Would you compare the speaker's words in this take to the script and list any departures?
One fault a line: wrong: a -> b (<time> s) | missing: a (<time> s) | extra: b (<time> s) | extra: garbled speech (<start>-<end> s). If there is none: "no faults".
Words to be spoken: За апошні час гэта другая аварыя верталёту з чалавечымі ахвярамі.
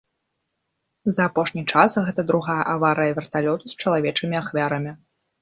no faults